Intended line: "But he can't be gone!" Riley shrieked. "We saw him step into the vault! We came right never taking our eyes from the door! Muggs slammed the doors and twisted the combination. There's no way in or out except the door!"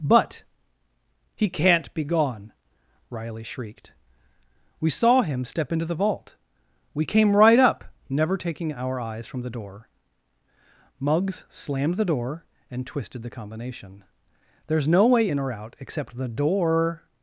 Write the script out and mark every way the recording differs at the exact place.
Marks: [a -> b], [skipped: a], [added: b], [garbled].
"But he can't be gone!" Riley shrieked. "We saw him step into the vault! We came right [added: up] never taking our eyes from the door! Muggs slammed the [doors -> door] and twisted the combination. There's no way in or out except the door!"